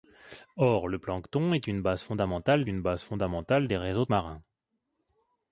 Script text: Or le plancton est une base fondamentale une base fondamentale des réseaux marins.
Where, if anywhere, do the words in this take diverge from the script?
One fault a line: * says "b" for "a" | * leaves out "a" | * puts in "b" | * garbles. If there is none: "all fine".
all fine